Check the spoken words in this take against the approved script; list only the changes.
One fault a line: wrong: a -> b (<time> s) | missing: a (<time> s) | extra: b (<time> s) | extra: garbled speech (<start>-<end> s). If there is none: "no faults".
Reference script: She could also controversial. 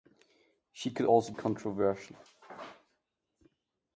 no faults